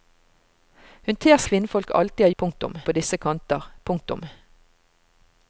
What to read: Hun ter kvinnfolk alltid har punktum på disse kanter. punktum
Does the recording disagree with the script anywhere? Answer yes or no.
no